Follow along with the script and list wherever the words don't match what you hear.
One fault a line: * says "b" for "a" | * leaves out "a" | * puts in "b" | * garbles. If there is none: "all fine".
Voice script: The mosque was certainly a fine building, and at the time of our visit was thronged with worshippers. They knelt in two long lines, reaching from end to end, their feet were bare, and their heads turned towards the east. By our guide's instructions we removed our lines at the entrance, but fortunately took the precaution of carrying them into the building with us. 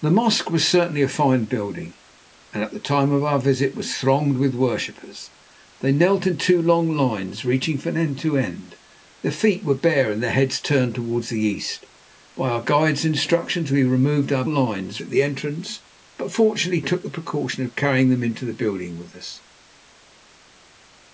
all fine